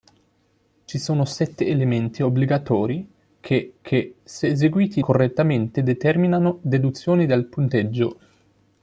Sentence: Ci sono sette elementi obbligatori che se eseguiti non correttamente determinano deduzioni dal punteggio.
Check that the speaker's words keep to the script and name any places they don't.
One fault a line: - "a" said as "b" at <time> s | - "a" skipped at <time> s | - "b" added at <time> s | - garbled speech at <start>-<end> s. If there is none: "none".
- "che" added at 3.8 s
- "non" skipped at 5.0 s